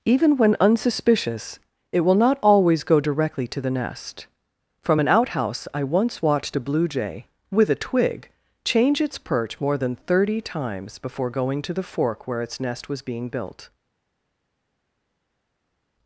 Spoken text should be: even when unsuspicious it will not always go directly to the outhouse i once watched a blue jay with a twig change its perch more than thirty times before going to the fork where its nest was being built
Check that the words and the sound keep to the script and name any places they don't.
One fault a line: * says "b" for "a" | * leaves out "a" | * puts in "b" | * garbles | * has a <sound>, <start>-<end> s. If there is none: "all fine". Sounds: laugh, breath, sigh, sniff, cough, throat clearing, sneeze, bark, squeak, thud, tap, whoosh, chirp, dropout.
* puts in "nest from an"